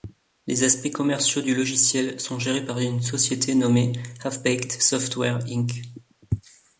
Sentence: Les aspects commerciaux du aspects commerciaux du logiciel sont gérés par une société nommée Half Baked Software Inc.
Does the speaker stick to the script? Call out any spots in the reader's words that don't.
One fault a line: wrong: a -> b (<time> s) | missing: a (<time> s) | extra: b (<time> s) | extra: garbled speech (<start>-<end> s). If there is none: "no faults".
missing: aspects commerciaux du (1.5 s)